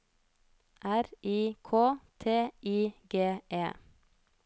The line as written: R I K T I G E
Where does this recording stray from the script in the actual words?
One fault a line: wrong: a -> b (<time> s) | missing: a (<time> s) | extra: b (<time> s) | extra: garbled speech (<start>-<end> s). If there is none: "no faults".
no faults